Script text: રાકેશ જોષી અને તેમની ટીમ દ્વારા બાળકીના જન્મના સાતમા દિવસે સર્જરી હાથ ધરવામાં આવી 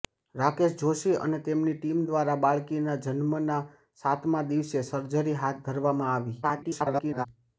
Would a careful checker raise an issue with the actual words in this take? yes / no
yes